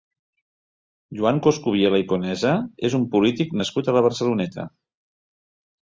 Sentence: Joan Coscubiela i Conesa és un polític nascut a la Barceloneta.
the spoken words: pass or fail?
pass